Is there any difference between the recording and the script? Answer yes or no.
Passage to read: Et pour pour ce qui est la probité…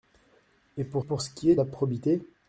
no